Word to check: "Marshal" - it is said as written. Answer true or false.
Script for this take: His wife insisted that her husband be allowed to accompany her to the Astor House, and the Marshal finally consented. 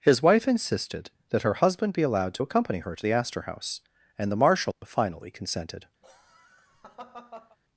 true